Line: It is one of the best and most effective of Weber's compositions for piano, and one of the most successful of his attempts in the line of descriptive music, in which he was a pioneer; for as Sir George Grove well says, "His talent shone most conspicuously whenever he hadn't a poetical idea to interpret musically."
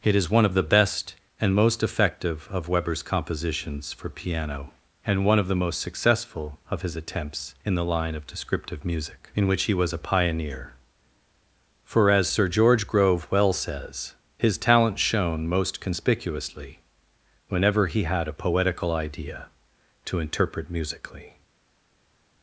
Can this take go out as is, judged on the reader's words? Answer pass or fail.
fail